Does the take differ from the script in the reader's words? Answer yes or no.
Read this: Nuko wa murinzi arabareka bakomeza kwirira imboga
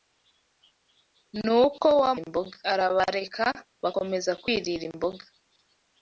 yes